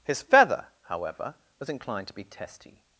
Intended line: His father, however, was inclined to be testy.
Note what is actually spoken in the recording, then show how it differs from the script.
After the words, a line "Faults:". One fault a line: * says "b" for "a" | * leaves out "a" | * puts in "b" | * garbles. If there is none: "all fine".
His feather, however, was inclined to be testy.
Faults:
* says "feather" for "father"